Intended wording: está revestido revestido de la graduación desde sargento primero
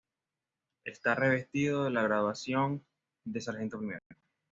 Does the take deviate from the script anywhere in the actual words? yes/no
yes